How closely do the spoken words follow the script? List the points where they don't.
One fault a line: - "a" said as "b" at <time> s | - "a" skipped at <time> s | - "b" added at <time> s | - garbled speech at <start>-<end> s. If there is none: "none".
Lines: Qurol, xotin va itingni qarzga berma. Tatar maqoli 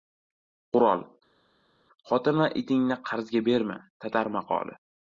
none